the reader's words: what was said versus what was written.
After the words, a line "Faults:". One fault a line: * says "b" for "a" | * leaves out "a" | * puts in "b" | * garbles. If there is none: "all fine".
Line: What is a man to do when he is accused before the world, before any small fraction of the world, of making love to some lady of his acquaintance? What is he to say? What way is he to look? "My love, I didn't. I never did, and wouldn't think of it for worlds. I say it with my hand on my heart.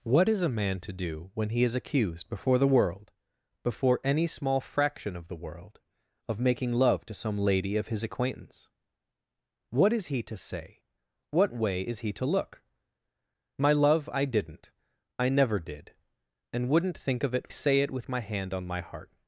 What is a man to do when he is accused before the world, before any small fraction of the world, of making love to some lady of his acquaintance? What is he to say? What way is he to look? "My love, I didn't. I never did, and wouldn't think of it say it with my hand on my heart.
Faults:
* leaves out "for worlds I"